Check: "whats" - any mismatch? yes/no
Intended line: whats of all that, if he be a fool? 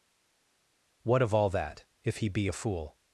yes